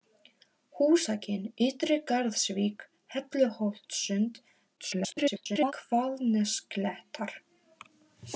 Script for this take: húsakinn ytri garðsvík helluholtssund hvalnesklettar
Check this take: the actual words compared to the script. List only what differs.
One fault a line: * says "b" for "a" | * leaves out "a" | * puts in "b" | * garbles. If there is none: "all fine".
* garbles